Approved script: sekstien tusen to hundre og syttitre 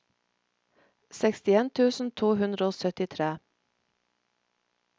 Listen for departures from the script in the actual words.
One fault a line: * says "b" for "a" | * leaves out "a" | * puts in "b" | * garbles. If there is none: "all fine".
all fine